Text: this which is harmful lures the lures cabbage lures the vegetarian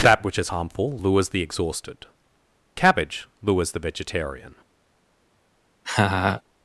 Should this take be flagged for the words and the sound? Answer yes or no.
yes